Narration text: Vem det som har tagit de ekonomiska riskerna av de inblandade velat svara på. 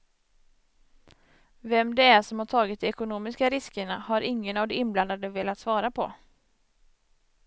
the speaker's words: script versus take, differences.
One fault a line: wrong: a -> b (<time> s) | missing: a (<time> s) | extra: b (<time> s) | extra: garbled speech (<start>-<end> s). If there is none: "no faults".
extra: är (2.0 s)
extra: har ingen (4.0 s)